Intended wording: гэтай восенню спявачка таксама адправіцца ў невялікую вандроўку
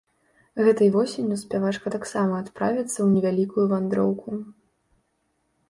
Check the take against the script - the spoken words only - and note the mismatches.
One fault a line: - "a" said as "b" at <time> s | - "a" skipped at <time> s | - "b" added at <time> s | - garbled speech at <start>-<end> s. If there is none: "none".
none